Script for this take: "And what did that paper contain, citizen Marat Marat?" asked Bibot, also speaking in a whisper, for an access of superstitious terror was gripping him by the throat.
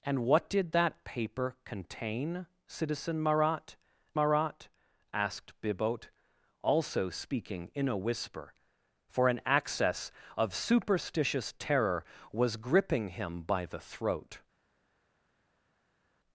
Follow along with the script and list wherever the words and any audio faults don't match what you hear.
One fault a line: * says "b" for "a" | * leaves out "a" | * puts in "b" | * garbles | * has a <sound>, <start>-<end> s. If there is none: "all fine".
all fine